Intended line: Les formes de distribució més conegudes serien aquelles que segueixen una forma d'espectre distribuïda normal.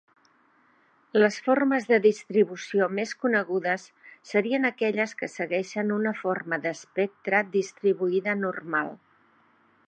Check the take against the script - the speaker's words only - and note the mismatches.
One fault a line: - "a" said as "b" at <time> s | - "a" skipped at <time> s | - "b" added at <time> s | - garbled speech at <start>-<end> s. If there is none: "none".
none